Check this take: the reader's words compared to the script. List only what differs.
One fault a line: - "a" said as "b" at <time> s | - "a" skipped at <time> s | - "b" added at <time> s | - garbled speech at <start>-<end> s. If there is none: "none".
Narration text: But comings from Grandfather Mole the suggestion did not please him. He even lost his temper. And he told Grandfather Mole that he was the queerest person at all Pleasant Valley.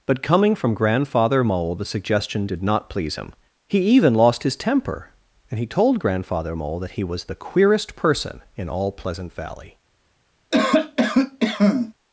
- "comings" said as "coming" at 0.2 s
- "at" said as "in" at 8.6 s